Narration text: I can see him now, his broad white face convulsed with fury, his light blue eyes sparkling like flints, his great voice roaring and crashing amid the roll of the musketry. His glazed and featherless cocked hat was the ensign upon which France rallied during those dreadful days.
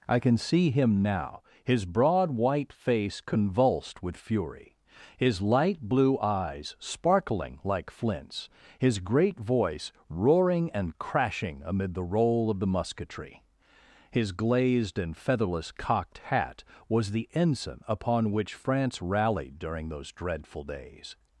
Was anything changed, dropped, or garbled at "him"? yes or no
no